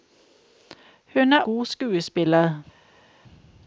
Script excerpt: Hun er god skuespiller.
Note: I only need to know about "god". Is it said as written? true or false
true